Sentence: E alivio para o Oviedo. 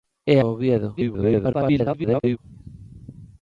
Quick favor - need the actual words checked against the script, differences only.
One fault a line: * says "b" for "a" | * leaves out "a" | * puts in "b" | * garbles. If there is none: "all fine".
* leaves out "alivio para"
* garbles